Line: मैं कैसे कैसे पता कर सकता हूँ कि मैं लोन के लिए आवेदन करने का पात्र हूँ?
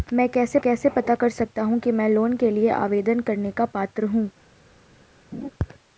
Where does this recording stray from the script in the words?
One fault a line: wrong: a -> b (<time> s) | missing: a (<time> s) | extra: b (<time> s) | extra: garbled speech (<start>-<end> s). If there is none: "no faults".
no faults